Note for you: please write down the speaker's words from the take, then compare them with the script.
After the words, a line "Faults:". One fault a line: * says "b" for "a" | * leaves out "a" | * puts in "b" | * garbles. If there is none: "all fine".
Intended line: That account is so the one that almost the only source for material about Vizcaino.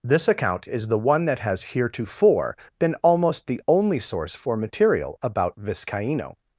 This account is the one that has heretofore been almost the only source for material about Vizcaino.
Faults:
* says "This" for "That"
* leaves out "so"
* puts in "has heretofore been"